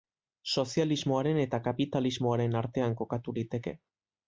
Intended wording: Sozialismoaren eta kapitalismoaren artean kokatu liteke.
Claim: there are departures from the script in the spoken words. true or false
false